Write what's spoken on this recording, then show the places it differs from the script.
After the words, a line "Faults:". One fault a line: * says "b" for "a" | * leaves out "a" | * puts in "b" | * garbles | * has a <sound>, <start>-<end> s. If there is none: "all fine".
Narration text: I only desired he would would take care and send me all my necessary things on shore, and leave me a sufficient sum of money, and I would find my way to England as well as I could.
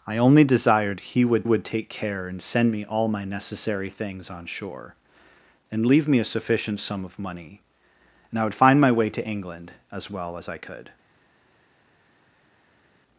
I only desired he would would take care and send me all my necessary things on shore, and leave me a sufficient sum of money, and I would find my way to England as well as I could.
Faults:
all fine